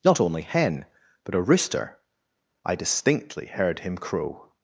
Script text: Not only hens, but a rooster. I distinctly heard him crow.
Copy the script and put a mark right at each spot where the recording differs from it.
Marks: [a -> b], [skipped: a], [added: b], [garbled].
Not only [hens, -> hen] but a rooster. I distinctly heard him crow.